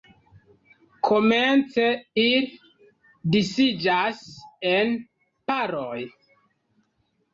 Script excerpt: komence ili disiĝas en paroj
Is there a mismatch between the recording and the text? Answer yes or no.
no